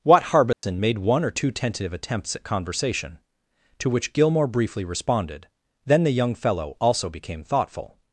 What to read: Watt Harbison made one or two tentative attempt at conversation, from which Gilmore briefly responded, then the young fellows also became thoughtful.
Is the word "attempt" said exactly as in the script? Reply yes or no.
no